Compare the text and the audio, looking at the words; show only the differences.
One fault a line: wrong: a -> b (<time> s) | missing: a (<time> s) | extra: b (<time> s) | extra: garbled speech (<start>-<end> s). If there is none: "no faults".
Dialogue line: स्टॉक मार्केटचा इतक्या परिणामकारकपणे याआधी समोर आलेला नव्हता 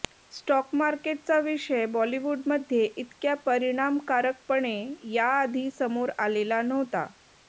extra: विषय बॉलिवूडमध्ये (1.4 s)